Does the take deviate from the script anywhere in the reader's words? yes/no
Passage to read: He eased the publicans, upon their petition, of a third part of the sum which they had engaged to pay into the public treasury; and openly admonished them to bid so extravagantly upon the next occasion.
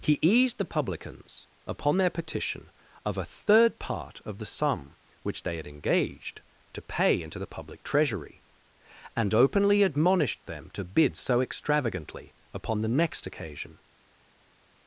no